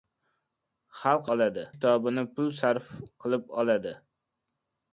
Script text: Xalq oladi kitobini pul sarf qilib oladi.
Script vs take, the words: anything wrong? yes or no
no